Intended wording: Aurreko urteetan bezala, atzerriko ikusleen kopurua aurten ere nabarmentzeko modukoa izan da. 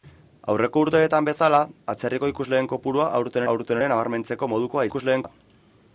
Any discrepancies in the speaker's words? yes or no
yes